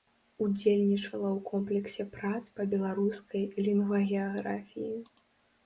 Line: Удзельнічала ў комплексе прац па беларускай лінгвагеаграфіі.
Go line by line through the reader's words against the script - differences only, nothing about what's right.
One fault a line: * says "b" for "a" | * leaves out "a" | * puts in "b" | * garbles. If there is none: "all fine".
all fine